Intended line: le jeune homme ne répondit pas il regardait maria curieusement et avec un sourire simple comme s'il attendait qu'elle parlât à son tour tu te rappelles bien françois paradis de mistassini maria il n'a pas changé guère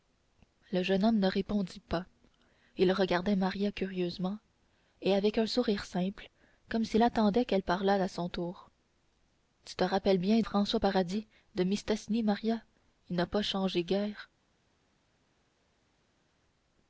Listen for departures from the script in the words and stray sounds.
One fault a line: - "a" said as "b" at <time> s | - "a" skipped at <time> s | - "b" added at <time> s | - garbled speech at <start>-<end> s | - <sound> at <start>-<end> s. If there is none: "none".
none